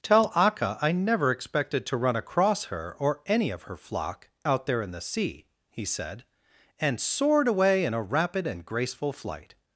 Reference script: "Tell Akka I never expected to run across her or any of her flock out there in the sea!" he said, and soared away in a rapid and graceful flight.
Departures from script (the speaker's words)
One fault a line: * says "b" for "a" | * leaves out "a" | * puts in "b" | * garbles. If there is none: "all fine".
all fine